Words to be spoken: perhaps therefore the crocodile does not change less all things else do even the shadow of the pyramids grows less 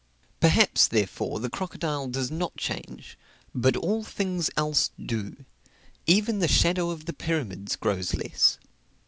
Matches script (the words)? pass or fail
fail